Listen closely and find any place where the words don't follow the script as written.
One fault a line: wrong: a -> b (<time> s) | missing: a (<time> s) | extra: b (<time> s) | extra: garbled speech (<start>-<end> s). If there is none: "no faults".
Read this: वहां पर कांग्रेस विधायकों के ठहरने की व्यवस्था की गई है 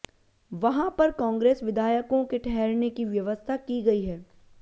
no faults